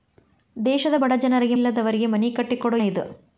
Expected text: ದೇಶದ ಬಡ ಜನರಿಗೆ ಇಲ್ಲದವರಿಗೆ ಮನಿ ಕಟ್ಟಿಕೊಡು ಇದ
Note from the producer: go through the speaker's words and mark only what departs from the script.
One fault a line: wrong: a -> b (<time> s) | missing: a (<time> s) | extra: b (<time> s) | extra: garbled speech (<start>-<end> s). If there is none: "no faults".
no faults